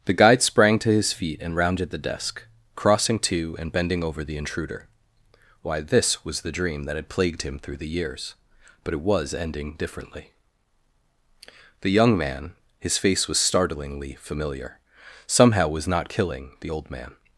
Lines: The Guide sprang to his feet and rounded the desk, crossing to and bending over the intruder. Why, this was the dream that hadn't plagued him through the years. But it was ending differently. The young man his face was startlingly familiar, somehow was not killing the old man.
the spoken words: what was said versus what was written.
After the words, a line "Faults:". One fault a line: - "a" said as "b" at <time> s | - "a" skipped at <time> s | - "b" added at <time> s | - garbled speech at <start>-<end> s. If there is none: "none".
The Guide sprang to his feet and rounded the desk, crossing to and bending over the intruder. Why, this was the dream that had plagued him through the years. But it was ending differently. The young man his face was startlingly familiar, somehow was not killing the old man.
Faults:
- "hadn't" said as "had" at 7.0 s